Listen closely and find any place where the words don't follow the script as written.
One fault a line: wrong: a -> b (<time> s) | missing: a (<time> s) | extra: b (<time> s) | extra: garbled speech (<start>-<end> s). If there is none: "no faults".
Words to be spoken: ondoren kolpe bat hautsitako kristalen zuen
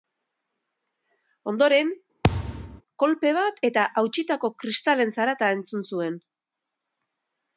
extra: eta (3.7 s)
extra: zarata entzun (5.2 s)